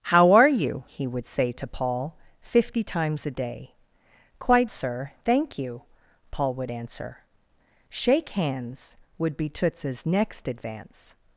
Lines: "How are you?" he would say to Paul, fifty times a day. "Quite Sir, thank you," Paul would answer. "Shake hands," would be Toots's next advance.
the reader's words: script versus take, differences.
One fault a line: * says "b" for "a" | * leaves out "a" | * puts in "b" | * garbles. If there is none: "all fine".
all fine